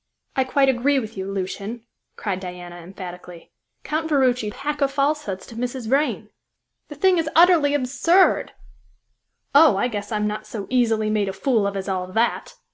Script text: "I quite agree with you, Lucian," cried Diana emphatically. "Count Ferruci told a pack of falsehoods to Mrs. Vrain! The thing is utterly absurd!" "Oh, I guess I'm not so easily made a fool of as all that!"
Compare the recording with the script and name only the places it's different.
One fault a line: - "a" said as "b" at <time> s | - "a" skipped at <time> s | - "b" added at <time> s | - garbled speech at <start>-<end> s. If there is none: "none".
- "told" skipped at 4.5 s